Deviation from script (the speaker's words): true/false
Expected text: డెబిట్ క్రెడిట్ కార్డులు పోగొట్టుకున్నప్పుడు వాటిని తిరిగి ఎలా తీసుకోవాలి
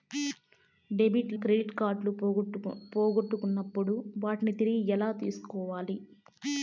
false